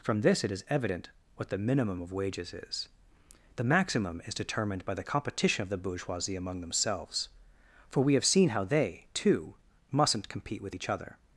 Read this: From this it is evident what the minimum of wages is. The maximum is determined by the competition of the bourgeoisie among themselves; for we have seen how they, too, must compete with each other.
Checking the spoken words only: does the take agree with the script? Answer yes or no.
no